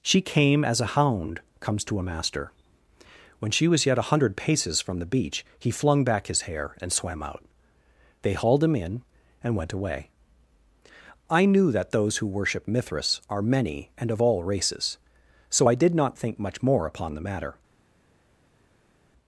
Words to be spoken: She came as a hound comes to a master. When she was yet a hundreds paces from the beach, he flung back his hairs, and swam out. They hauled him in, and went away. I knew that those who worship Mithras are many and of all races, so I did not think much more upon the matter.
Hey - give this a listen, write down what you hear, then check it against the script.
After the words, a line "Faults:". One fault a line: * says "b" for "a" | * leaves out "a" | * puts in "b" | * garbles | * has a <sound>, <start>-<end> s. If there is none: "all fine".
She came as a hound comes to a master. When she was yet a hundred paces from the beach, he flung back his hair, and swam out. They hauled him in, and went away. I knew that those who worship Mithras are many and of all races, so I did not think much more upon the matter.
Faults:
* says "hundred" for "hundreds"
* says "hair" for "hairs"